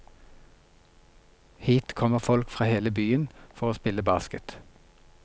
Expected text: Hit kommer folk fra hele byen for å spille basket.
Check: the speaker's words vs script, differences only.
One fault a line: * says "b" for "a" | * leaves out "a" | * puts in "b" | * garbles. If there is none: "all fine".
all fine